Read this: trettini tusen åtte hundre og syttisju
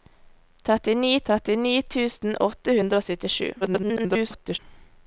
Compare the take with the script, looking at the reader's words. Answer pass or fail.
fail